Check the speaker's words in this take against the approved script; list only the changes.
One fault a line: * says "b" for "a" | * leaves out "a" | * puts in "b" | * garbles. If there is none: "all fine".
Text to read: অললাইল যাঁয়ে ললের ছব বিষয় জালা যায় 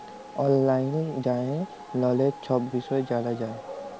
all fine